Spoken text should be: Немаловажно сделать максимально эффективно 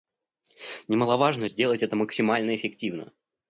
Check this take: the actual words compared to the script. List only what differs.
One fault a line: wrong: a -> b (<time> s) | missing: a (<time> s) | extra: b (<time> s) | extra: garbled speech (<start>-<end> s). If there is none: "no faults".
extra: это (1.8 s)